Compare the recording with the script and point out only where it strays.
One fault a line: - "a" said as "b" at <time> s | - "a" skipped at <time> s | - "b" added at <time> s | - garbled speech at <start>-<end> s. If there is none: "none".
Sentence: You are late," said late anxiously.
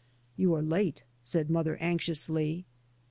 - "late" said as "mother" at 1.5 s